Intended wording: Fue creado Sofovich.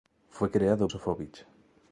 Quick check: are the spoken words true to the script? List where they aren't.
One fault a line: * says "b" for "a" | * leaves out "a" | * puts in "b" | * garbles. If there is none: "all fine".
all fine